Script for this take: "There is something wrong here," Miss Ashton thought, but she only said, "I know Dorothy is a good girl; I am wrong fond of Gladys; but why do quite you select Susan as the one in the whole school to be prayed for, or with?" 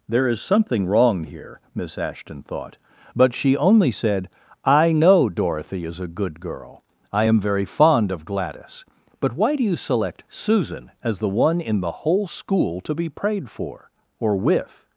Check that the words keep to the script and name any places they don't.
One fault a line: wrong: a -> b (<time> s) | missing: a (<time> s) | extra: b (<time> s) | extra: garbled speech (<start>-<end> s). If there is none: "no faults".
wrong: wrong -> very (7.4 s)
missing: quite (9.6 s)